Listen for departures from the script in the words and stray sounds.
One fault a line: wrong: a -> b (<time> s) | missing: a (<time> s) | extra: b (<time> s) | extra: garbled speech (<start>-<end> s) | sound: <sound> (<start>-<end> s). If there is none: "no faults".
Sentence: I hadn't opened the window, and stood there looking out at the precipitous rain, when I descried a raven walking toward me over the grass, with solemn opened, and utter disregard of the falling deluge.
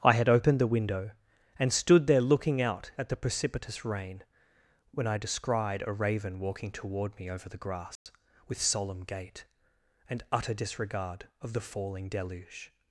wrong: hadn't -> had (0.1 s)
sound: dropout (8.0-8.1 s)
wrong: opened -> gait (9.0 s)